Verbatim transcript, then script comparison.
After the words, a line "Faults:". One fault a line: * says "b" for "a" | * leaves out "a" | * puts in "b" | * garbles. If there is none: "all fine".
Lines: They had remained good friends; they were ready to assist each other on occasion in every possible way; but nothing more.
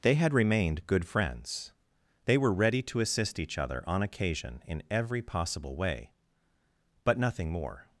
They had remained good friends; they were ready to assist each other on occasion in every possible way; but nothing more.
Faults:
all fine